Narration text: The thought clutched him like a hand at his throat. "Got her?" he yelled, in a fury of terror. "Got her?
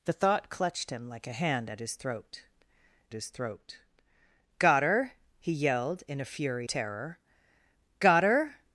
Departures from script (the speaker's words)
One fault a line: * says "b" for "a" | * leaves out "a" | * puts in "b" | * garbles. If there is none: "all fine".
* puts in "his throat"
* leaves out "of"